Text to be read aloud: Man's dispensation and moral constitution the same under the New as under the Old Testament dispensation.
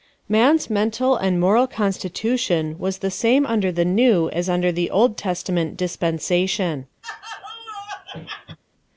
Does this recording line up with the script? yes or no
no